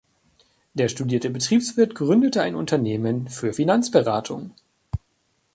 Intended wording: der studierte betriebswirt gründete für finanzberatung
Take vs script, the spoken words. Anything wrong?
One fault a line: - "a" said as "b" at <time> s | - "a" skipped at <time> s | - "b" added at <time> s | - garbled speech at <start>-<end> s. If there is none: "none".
- "ein unternehmen" added at 2.4 s